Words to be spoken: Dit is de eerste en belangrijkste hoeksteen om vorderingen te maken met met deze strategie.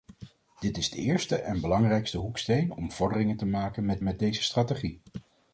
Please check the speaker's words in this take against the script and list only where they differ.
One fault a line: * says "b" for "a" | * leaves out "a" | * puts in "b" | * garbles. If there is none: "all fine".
all fine